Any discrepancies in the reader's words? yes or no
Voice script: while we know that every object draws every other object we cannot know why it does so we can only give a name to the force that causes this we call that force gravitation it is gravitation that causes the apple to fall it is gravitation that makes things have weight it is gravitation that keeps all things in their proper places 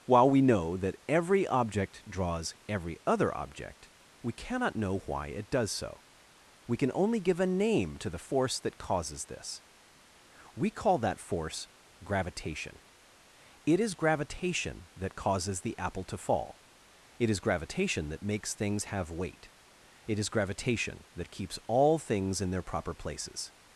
no